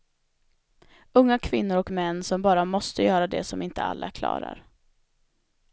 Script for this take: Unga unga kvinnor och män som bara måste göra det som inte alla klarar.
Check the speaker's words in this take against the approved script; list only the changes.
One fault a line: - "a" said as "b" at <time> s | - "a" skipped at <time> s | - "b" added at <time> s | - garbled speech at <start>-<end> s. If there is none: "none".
- "unga" skipped at 1.4 s